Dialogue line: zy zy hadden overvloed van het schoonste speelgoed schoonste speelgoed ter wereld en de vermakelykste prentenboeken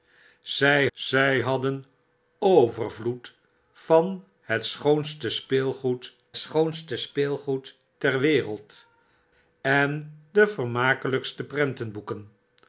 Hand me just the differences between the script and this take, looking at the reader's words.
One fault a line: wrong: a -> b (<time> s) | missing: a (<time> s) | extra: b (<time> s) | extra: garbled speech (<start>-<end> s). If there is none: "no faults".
no faults